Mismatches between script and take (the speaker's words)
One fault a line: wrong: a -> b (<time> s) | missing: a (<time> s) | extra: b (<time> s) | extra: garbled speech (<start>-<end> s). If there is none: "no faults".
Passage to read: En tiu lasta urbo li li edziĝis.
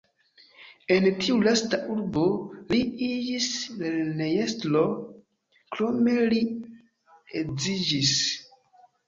extra: iĝis lernejestro krome (3.1 s)